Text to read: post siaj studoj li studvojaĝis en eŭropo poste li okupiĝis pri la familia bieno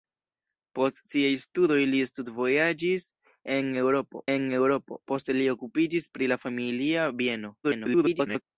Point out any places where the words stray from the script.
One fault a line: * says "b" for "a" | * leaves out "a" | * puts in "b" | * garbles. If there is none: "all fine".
* puts in "en eŭropo"
* garbles